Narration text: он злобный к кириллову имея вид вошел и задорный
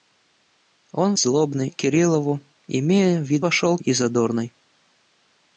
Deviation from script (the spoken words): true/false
false